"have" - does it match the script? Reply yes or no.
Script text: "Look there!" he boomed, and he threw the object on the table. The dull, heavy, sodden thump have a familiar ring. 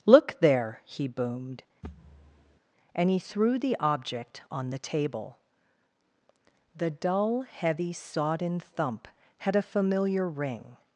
no